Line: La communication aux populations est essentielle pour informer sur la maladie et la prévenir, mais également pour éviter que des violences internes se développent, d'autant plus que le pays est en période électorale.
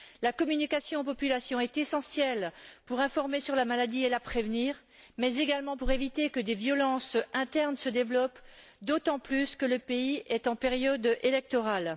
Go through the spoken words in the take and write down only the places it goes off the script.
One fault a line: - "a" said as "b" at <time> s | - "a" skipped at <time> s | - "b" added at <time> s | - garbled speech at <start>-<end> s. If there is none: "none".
none